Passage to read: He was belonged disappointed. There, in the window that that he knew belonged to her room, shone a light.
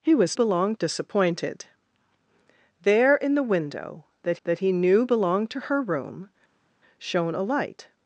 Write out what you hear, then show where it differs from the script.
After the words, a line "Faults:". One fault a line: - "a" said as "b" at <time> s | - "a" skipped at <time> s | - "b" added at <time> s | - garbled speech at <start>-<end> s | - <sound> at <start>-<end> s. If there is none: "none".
He was belonged disappointed. There, in the window that that he knew belonged to her room, shone a light.
Faults:
none